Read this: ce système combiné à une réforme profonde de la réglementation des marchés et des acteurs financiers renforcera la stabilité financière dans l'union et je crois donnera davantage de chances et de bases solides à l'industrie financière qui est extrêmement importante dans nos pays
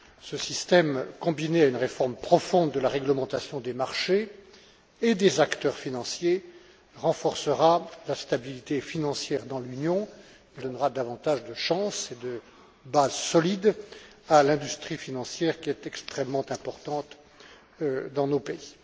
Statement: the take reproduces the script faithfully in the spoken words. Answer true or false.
false